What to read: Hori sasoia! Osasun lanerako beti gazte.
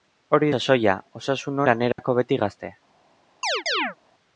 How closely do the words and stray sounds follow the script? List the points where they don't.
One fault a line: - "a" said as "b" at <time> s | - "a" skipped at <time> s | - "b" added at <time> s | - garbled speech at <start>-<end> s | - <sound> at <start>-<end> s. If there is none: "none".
- dropout at 1.9-2.0 s
- chirp at 3.4-4.0 s